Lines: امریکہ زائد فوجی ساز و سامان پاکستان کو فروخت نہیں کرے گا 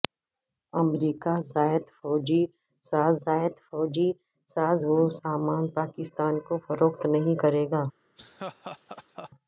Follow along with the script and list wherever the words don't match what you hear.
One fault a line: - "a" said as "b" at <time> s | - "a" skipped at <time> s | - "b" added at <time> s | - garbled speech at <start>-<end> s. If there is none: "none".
- "زائد فوجی ساز" added at 3.2 s